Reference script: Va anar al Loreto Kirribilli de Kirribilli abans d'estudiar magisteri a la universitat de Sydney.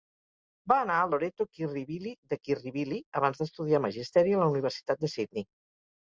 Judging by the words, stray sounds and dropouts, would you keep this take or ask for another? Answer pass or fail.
pass